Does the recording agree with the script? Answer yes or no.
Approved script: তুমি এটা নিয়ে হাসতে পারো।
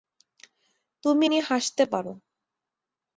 no